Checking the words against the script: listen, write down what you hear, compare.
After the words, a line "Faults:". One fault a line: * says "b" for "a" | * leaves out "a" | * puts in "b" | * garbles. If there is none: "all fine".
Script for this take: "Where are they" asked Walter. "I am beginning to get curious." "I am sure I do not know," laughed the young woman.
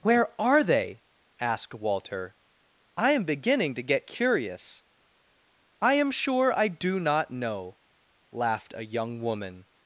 "Where are they" asked Walter. "I am beginning to get curious." "I am sure I do not know," laughed a young woman.
Faults:
* says "a" for "the"